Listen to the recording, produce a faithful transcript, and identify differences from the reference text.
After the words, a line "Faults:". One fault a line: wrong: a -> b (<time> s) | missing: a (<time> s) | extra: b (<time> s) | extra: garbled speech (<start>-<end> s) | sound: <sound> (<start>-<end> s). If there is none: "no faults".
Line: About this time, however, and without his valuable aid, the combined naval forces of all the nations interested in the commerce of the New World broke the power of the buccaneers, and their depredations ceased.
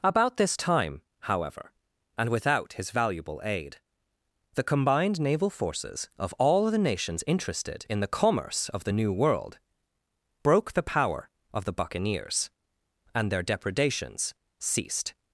About this time, however, and without his valuable aid, the combined naval forces of all the nations interested in the commerce of the New World broke the power of the buccaneers, and their depredations ceased.
Faults:
no faults